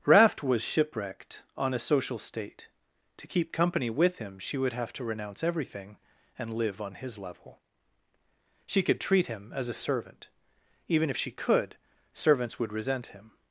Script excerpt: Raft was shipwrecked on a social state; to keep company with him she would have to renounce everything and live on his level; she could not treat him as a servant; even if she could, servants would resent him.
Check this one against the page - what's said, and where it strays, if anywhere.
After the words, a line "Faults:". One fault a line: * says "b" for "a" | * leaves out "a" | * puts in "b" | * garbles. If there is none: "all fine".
Raft was shipwrecked on a social state; to keep company with him she would have to renounce everything and live on his level; she could treat him as a servant; even if she could, servants would resent him.
Faults:
* leaves out "not"